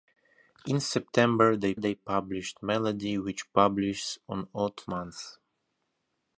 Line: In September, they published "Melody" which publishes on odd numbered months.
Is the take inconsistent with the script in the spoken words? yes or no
yes